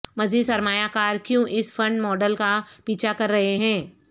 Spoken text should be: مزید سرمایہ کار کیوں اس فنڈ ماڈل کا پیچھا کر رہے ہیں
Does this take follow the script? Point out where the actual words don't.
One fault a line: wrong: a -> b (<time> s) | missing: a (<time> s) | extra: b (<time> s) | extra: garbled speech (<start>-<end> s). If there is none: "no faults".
no faults